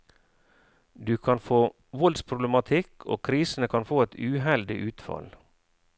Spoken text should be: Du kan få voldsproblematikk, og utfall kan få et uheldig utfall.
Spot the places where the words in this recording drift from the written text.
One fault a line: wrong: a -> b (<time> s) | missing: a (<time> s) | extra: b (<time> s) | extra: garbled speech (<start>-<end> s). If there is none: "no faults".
wrong: utfall -> krisene (3.3 s)